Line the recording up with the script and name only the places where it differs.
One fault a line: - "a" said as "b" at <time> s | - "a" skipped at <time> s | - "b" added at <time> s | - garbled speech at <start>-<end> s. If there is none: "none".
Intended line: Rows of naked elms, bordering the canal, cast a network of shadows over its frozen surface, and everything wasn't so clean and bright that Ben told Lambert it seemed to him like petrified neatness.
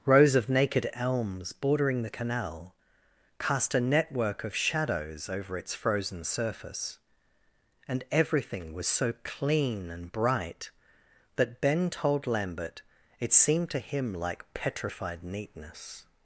- "wasn't" said as "was" at 8.7 s